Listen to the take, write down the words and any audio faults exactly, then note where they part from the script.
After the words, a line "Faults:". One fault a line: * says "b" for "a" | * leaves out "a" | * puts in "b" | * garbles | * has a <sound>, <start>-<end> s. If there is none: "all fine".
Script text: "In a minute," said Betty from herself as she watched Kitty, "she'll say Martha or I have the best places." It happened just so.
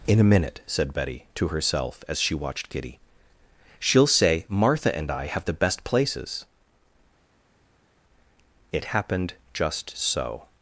"In a minute," said Betty to herself as she watched Kitty, "she'll say Martha and I have the best places." It happened just so.
Faults:
* says "to" for "from"
* says "and" for "or"